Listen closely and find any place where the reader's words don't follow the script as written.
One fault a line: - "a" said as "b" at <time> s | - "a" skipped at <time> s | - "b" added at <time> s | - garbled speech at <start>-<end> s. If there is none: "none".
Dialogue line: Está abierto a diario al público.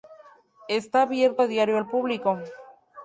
none